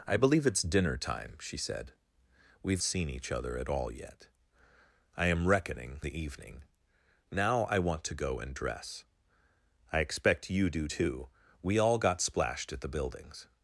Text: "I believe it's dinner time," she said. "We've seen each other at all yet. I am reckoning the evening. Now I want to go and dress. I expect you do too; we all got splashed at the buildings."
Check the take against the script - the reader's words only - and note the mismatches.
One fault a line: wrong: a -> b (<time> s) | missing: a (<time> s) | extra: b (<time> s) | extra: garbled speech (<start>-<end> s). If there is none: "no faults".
no faults